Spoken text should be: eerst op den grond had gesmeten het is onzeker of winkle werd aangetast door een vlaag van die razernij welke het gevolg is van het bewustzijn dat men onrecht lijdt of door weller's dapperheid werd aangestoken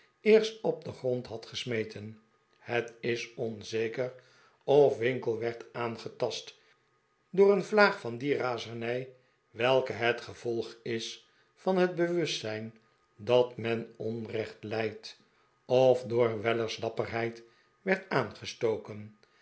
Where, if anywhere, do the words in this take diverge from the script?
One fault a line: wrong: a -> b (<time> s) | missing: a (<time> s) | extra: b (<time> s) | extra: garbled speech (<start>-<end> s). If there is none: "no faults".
no faults